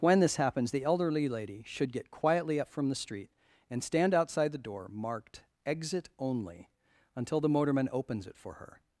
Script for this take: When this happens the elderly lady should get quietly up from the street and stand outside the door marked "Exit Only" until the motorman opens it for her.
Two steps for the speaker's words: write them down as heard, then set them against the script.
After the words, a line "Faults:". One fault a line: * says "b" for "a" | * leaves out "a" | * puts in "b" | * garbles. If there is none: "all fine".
When this happens the elderly lady should get quietly up from the street and stand outside the door marked "Exit Only" until the motorman opens it for her.
Faults:
all fine